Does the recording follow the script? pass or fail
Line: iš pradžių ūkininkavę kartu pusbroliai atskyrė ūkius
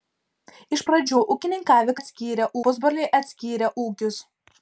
fail